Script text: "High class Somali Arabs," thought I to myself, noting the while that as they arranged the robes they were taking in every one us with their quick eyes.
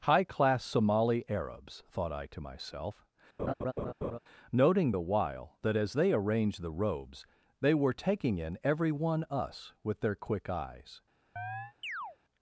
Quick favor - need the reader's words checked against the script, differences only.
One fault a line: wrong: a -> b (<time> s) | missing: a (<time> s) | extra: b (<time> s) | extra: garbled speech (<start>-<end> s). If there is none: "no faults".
no faults